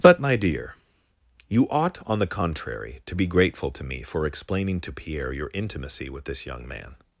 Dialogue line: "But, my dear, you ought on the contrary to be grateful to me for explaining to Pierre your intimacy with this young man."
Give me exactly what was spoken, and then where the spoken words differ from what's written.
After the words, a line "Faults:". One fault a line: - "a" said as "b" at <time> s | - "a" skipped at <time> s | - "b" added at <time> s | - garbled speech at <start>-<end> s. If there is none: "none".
"But, my dear, you ought on the contrary to be grateful to me for explaining to Pierre your intimacy with this young man."
Faults:
none